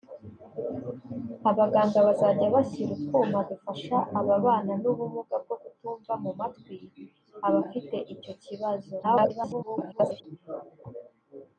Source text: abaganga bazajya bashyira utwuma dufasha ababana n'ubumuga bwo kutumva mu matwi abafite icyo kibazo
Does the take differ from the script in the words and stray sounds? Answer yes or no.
yes